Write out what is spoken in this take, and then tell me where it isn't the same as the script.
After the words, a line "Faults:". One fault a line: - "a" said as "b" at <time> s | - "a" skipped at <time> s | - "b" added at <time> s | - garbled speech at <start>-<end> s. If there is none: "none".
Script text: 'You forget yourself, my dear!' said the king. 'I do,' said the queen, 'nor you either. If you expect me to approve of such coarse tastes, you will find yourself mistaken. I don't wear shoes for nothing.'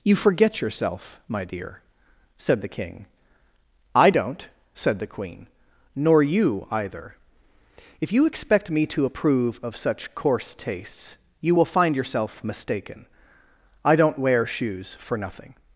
'You forget yourself, my dear!' said the king. 'I don't,' said the queen, 'nor you either. If you expect me to approve of such coarse tastes, you will find yourself mistaken. I don't wear shoes for nothing.'
Faults:
- "do" said as "don't" at 4.1 s